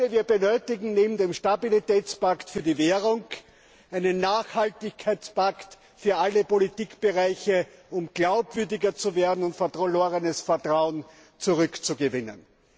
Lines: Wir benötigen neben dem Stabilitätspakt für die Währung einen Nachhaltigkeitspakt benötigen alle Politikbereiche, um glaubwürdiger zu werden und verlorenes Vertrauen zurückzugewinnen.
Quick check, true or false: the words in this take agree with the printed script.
false